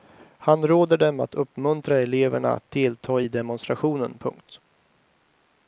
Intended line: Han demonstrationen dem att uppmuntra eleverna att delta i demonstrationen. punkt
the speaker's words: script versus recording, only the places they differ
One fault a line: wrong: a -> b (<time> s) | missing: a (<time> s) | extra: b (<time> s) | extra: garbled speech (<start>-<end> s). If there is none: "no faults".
wrong: demonstrationen -> råder (0.7 s)